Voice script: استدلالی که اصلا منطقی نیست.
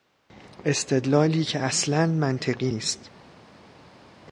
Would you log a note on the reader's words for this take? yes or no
no